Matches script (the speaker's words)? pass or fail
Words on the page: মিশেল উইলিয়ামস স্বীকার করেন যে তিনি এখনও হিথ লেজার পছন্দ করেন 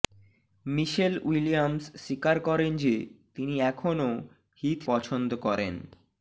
fail